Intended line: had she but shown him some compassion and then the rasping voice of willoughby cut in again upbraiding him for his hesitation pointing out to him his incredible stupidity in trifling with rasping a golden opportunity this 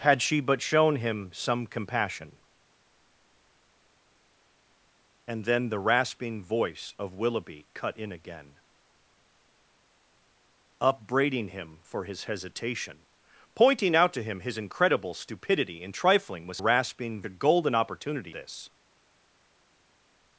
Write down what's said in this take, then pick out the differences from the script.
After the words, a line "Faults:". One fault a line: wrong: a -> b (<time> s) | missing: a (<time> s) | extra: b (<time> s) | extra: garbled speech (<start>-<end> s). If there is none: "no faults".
had she but shown him some compassion and then the rasping voice of willoughby cut in again upbraiding him for his hesitation pointing out to him his incredible stupidity in trifling with rasping a golden opportunity this
Faults:
no faults